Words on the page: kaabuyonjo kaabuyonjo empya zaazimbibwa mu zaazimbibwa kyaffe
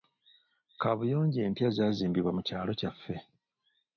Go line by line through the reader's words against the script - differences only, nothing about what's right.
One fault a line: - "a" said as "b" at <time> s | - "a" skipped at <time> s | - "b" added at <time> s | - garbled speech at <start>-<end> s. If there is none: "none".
- "kaabuyonjo" skipped at 1.4 s
- "zaazimbibwa" said as "kyalo" at 2.5 s